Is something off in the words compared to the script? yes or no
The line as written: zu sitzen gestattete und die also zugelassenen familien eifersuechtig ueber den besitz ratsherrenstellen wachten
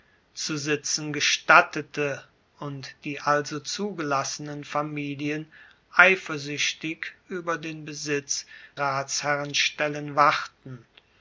no